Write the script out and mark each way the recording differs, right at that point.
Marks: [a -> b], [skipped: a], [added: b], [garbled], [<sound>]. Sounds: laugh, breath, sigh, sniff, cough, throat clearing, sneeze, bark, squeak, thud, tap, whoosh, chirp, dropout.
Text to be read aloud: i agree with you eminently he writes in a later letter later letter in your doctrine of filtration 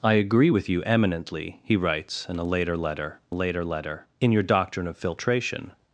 i agree with you eminently he writes in a later letter later letter in your doctrine of filtration